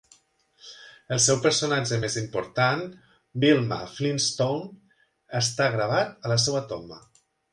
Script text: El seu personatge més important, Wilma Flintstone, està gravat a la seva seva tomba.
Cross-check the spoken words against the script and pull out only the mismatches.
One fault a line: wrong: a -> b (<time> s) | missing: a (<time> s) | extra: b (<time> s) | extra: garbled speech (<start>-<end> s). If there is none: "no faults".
missing: seva (6.7 s)